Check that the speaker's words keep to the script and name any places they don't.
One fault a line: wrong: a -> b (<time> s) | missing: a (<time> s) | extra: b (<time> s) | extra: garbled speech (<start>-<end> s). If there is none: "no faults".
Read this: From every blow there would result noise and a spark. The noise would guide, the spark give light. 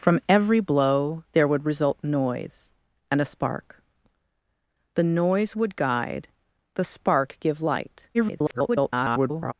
extra: garbled speech (8.1-9.5 s)